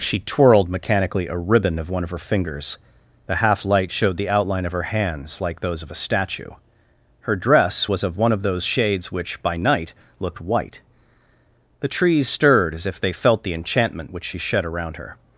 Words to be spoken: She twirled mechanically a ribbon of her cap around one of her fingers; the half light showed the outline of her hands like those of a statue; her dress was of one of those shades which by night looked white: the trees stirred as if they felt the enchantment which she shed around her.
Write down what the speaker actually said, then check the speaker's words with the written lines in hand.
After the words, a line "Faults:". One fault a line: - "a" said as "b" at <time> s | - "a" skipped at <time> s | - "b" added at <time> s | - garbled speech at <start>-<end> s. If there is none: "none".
She twirled mechanically a ribbon of one of her fingers; the half light showed the outline of her hands like those of a statue; her dress was of one of those shades which by night looked white: the trees stirred as if they felt the enchantment which she shed around her.
Faults:
- "her cap around" skipped at 1.9 s